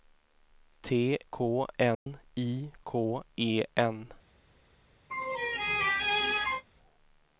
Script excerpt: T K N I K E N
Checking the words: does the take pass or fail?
pass